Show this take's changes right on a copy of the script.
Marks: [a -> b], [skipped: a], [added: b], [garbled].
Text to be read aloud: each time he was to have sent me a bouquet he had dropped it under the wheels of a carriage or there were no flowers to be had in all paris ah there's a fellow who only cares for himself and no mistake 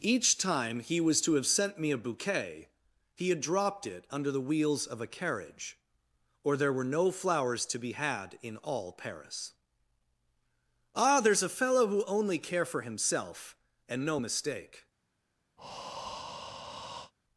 each time he was to have sent me a bouquet he had dropped it under the wheels of a carriage or there were no flowers to be had in all paris ah there's a fellow who only [cares -> care] for himself and no mistake